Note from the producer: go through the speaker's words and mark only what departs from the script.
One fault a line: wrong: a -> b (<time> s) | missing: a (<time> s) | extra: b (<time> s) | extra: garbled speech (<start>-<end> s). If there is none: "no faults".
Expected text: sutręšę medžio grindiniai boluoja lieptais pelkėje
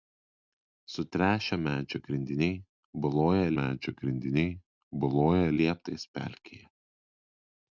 extra: medžio grindiniai boluoja (3.6 s)